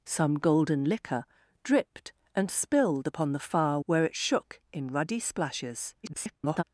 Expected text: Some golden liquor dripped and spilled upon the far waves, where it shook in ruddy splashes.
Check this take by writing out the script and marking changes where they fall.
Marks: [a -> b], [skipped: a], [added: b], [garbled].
Some golden liquor dripped and spilled upon the far [skipped: waves,] where it shook in ruddy splashes. [garbled]